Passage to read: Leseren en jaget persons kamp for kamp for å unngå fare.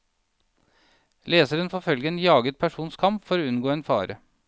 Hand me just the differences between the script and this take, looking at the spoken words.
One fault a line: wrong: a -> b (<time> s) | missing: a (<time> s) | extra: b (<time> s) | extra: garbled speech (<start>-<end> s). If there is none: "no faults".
extra: får følge (1.7 s)
missing: kamp for (3.4 s)
extra: en (3.7 s)